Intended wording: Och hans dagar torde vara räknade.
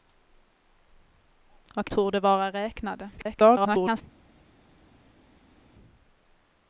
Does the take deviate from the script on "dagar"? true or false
true